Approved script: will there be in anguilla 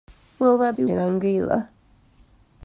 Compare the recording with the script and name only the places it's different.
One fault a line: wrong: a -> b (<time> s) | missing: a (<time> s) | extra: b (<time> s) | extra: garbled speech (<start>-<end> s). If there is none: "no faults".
no faults